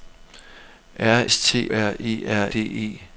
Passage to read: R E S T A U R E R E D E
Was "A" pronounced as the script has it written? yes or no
no